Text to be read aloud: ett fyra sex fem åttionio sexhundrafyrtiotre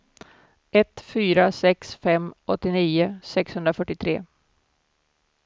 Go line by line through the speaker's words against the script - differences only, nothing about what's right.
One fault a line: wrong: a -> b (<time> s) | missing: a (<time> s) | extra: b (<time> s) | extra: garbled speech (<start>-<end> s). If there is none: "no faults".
no faults